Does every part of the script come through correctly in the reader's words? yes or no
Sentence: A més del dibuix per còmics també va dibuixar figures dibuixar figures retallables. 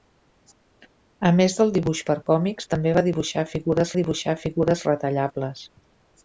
yes